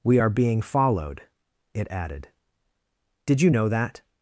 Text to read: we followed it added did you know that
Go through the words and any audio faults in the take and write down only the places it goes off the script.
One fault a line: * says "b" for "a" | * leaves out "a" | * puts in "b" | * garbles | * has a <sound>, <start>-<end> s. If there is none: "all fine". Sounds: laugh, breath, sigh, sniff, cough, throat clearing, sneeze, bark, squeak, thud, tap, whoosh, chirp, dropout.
* puts in "are being"